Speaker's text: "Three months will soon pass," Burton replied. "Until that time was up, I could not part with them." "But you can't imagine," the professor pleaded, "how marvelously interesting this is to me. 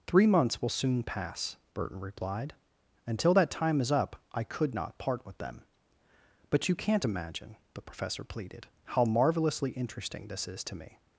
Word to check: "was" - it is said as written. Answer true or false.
false